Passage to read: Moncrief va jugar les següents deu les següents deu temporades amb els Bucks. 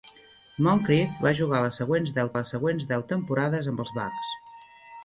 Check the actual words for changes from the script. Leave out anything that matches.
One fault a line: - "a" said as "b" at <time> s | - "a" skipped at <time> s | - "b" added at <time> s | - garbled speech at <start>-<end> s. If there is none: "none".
none